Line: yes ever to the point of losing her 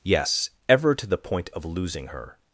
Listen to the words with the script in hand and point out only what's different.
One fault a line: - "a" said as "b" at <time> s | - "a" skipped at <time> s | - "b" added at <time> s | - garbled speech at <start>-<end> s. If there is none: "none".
none